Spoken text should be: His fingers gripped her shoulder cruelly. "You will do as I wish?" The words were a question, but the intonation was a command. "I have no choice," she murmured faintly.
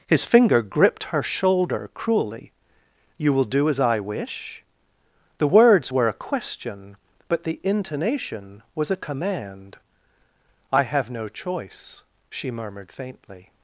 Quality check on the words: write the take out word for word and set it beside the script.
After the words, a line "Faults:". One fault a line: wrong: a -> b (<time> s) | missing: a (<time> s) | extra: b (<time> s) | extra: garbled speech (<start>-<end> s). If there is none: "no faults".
His finger gripped her shoulder cruelly. "You will do as I wish?" The words were a question, but the intonation was a command. "I have no choice," she murmured faintly.
Faults:
wrong: fingers -> finger (0.2 s)